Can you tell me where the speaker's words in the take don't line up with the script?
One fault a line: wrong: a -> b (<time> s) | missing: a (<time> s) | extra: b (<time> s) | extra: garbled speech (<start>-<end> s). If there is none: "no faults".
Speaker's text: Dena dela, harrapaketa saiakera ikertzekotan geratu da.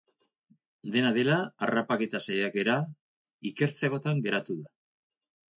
no faults